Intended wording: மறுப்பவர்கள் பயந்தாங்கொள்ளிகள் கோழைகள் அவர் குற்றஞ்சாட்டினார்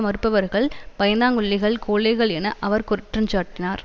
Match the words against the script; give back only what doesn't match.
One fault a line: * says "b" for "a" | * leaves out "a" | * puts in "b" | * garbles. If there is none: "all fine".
* puts in "என"